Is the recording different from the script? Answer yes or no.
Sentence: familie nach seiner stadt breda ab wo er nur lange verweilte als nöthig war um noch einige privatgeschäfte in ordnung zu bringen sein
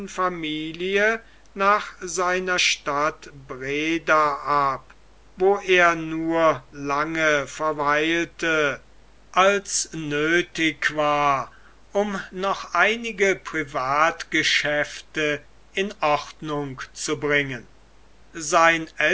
no